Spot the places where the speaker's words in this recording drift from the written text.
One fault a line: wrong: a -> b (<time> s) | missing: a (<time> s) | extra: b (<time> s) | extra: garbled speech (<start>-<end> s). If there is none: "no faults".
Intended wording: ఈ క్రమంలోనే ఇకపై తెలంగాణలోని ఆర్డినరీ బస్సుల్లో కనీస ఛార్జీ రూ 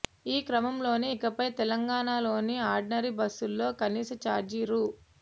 no faults